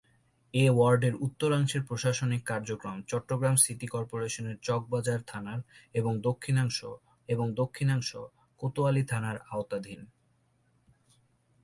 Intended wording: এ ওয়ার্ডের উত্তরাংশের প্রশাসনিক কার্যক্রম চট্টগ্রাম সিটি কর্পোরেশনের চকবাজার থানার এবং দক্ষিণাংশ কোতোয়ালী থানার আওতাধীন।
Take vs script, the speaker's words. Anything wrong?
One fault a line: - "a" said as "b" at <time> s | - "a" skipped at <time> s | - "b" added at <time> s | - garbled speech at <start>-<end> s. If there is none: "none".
- "এবং দক্ষিণাংশ" added at 7.3 s